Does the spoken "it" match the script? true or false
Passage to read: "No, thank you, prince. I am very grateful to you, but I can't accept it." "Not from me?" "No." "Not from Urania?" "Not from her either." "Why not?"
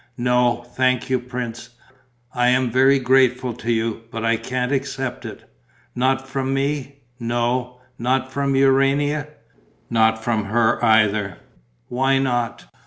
true